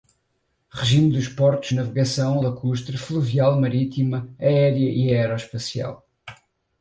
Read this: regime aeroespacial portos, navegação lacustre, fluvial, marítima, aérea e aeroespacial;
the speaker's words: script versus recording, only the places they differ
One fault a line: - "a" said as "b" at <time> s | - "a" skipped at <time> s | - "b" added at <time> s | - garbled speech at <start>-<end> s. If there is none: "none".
- "aeroespacial" said as "dos" at 1.1 s